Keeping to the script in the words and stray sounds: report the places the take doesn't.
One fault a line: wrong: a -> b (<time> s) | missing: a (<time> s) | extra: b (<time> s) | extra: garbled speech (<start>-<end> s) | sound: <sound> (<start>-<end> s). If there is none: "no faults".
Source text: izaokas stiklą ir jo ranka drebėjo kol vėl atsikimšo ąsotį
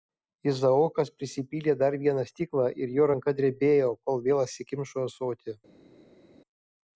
extra: prisipylė dar vieną (1.2 s)